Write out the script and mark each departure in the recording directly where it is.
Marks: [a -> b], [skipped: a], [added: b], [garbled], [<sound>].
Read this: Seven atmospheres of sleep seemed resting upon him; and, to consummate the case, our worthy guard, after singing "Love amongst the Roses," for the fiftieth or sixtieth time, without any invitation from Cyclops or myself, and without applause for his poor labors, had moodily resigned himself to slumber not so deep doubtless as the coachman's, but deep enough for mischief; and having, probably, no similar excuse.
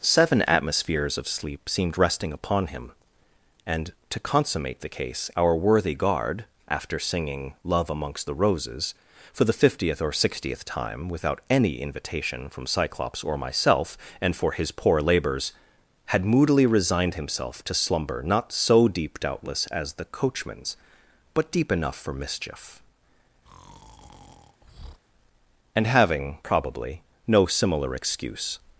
Seven atmospheres of sleep seemed resting upon him; and, to consummate the case, our worthy guard, after singing "Love amongst the Roses," for the fiftieth or sixtieth time, without any invitation from Cyclops or myself, and [skipped: without applause] for his poor labors, had moodily resigned himself to slumber not so deep doubtless as the coachman's, but deep enough for mischief; [breath] and having, probably, no similar excuse.